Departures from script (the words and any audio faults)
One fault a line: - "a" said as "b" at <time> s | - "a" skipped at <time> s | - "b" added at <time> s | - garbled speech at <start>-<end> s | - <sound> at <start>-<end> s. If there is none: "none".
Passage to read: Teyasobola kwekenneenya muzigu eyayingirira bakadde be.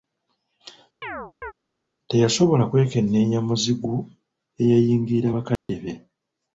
- chirp at 1.0-1.5 s
- dropout at 5.6-5.7 s